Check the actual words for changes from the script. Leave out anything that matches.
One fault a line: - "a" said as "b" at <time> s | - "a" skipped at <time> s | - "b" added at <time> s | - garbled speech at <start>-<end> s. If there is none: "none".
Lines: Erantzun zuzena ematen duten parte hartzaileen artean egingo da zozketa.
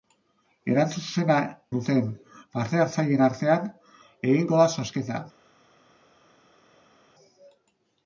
- "ematen" skipped at 1.4 s